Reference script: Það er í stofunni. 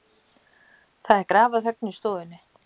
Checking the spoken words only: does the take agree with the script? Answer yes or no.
no